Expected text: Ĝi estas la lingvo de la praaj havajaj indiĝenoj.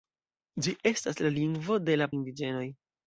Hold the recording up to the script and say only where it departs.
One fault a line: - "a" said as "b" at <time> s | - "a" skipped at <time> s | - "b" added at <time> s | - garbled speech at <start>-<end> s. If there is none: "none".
- "praaj havajaj" skipped at 2.1 s